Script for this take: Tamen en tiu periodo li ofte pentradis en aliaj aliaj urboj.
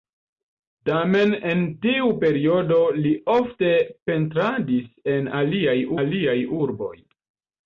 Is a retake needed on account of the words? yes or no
no